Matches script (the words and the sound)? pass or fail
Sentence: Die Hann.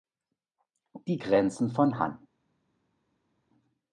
fail